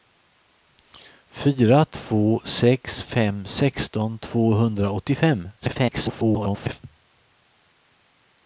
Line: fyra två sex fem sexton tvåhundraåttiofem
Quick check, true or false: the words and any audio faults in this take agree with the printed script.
false